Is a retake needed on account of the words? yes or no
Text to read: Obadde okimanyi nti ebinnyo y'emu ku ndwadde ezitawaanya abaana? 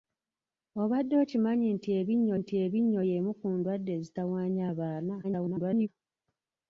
yes